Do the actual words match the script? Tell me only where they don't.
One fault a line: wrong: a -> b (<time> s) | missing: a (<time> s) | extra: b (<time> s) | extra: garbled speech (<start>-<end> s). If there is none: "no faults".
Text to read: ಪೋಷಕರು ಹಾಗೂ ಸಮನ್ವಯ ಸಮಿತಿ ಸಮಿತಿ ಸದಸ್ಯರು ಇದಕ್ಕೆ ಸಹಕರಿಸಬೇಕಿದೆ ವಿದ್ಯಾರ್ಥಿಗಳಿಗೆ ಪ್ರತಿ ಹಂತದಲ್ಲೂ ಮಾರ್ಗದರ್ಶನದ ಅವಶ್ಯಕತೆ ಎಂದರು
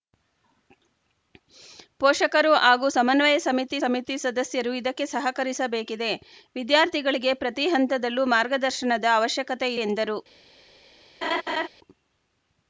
no faults